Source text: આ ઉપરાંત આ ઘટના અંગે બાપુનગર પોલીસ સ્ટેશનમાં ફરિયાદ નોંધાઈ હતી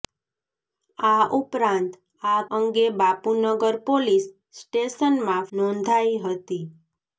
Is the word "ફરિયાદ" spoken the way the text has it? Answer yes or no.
no